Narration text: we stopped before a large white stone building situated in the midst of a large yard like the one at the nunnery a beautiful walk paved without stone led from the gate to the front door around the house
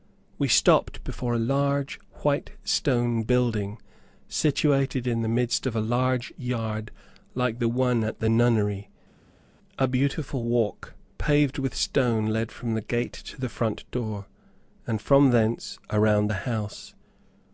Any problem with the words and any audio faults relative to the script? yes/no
yes